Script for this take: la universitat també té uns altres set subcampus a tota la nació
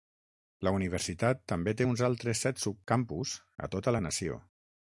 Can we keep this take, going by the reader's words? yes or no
yes